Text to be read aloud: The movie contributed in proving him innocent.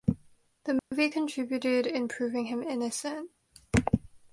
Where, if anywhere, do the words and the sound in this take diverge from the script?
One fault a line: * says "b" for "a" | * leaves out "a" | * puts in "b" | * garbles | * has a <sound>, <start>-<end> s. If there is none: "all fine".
* has a dropout, 0.8-0.9 s